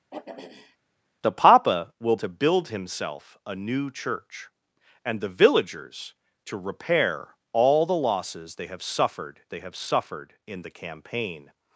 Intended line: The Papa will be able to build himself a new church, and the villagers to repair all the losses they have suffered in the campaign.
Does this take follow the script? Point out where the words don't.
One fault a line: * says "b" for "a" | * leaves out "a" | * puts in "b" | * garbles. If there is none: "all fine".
* leaves out "be able"
* puts in "they have suffered"